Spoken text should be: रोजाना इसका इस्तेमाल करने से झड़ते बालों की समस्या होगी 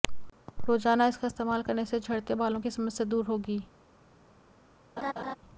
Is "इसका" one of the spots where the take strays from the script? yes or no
no